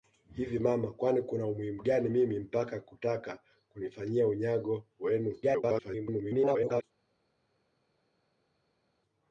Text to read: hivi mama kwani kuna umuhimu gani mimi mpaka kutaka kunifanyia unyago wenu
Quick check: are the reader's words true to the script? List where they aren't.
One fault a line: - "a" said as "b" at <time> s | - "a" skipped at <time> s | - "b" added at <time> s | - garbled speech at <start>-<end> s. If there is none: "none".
- garbled speech at 5.4-6.8 s